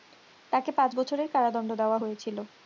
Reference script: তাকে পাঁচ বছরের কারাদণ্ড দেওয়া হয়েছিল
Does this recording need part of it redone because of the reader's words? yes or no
no